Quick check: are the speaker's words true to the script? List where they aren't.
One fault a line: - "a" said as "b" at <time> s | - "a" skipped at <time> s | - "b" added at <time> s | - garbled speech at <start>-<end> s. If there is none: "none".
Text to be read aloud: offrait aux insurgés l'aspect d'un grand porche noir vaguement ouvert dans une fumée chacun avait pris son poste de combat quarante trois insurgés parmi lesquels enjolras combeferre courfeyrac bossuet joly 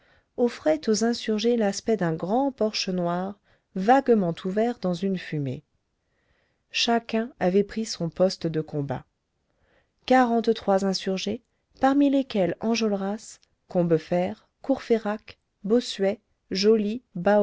none